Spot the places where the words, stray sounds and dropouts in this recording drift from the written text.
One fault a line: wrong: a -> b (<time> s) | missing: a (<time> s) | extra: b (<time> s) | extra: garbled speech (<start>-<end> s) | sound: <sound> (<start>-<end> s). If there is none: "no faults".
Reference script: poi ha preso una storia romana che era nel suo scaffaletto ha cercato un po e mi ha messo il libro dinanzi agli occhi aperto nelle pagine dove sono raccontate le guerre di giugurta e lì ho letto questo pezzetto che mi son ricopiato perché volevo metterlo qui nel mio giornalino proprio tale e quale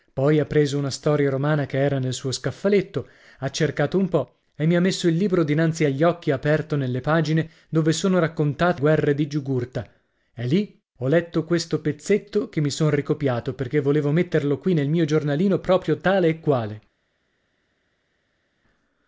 missing: le (8.8 s)